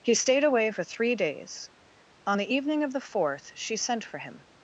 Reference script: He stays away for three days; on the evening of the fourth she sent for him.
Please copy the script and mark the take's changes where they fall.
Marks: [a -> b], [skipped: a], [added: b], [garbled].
He [stays -> stayed] away for three days; on the evening of the fourth she sent for him.